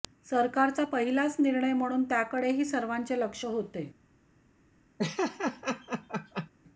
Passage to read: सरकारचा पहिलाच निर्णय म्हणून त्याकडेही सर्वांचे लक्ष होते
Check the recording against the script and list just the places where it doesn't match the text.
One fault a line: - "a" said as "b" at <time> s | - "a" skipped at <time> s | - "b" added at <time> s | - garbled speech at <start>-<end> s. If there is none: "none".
none